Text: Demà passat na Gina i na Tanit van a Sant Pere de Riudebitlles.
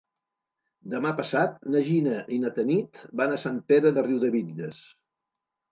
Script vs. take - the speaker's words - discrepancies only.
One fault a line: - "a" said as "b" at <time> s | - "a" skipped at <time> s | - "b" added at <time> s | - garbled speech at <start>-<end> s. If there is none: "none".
none